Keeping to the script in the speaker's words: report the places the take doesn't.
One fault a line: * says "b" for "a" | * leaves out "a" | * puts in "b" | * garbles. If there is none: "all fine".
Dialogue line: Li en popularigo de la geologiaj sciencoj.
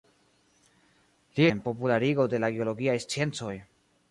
all fine